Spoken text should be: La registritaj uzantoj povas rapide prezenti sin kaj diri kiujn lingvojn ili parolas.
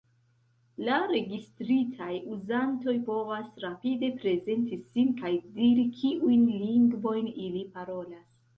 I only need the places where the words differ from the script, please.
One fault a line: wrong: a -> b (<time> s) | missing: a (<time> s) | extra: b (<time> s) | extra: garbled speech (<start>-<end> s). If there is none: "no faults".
no faults